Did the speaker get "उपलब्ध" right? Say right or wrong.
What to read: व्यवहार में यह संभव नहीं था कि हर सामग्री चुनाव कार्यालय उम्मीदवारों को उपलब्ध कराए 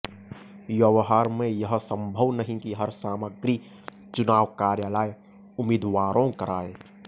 wrong